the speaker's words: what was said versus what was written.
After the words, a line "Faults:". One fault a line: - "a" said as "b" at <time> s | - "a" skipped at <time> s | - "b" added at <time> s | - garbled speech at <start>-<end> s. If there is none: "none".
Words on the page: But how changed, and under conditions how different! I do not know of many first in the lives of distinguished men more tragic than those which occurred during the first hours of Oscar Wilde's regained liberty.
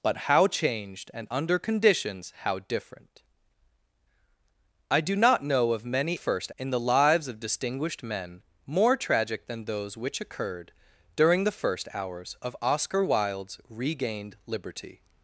But how changed, and under conditions how different! I do not know of many first in the lives of distinguished men more tragic than those which occurred during the first hours of Oscar Wilde's regained liberty.
Faults:
none